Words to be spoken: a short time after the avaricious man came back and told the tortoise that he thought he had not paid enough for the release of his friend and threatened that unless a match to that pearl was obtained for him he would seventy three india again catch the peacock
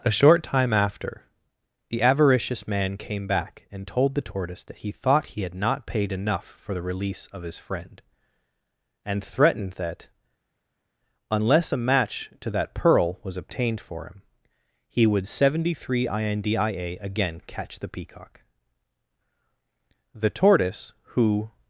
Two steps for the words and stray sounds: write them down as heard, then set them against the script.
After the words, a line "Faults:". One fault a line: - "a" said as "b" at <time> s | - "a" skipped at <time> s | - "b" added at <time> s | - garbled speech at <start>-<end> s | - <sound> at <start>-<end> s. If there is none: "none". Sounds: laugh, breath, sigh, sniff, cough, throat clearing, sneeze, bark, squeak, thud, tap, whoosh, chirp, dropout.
a short time after the avaricious man came back and told the tortoise that he thought he had not paid enough for the release of his friend and threatened that unless a match to that pearl was obtained for him he would seventy three india again catch the peacock the tortoise who
Faults:
- "the tortoise who" added at 20.2 s